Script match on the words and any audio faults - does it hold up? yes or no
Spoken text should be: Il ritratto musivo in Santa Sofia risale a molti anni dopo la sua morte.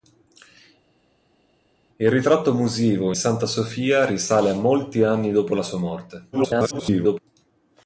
no